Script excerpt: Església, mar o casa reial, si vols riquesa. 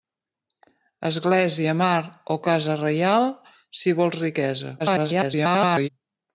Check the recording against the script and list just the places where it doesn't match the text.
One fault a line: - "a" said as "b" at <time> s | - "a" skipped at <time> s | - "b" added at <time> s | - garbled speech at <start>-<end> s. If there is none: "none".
- garbled speech at 4.8-5.9 s